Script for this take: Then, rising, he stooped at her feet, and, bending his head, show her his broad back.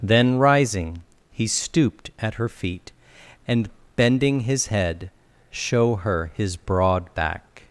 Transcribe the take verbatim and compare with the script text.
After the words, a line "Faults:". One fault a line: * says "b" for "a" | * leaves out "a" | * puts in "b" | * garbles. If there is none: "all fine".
Then, rising, he stooped at her feet, and, bending his head, show her his broad back.
Faults:
all fine